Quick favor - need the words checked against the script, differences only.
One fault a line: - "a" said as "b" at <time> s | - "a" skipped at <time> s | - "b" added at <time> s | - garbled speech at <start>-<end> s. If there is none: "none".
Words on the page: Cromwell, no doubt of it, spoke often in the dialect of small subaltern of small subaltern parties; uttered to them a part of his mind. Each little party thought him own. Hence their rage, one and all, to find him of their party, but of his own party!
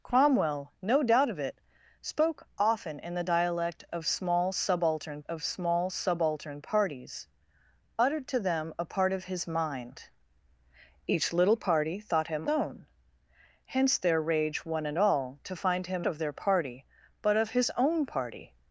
none